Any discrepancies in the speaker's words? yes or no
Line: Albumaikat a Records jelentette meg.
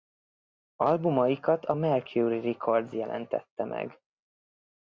yes